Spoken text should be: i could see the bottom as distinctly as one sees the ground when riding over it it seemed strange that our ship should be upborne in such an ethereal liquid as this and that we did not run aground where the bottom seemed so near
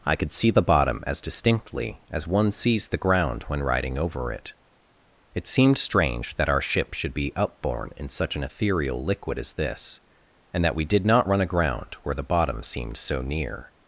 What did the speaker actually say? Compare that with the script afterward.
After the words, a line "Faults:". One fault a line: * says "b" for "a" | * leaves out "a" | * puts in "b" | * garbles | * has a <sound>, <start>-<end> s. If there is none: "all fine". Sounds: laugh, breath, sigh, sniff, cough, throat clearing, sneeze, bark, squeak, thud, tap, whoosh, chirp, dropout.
i could see the bottom as distinctly as one sees the ground when riding over it it seemed strange that our ship should be upborne in such an ethereal liquid as this and that we did not run aground where the bottom seemed so near
Faults:
all fine